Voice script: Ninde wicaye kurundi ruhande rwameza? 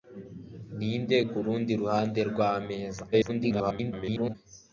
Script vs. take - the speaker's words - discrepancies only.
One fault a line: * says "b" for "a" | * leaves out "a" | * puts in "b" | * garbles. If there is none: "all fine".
* leaves out "wicaye"
* garbles